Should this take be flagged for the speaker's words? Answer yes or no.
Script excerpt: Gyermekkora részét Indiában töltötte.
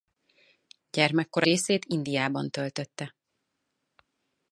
no